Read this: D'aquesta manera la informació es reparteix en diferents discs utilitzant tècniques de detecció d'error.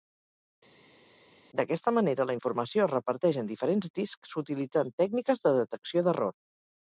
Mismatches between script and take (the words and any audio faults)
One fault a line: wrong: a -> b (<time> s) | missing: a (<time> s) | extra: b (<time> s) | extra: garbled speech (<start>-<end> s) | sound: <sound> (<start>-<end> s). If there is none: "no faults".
no faults